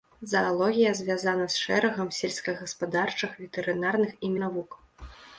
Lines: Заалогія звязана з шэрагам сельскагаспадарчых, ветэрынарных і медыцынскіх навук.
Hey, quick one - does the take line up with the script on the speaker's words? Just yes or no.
no